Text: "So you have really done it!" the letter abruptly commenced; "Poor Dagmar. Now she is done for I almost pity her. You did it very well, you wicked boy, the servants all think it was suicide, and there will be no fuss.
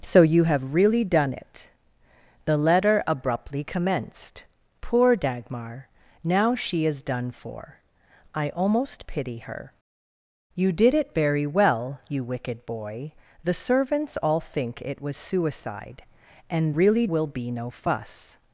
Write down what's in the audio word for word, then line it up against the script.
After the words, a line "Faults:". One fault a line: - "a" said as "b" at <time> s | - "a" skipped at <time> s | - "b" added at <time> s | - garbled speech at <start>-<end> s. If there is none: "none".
"So you have really done it!" the letter abruptly commenced; "Poor Dagmar. Now she is done for I almost pity her. You did it very well, you wicked boy, the servants all think it was suicide, and really will be no fuss.
Faults:
- "there" said as "really" at 16.8 s